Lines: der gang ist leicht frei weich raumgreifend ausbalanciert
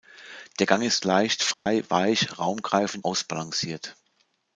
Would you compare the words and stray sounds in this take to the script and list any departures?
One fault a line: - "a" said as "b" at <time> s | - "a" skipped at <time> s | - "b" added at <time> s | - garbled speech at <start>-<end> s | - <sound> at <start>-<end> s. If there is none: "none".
- dropout at 1.5-1.7 s